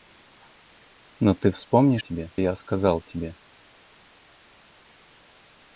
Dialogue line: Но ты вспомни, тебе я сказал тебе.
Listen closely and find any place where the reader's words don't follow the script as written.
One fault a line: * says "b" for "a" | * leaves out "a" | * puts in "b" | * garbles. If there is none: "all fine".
all fine